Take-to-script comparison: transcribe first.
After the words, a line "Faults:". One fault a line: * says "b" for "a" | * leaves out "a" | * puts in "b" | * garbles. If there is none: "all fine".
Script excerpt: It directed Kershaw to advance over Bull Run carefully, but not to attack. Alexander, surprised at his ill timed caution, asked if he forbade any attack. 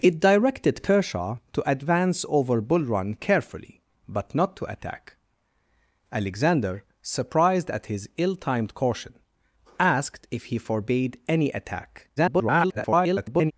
It directed Kershaw to advance over Bull Run carefully, but not to attack. Alexander, surprised at his ill timed caution, asked if he forbade any attack. [garbled]
Faults:
* garbles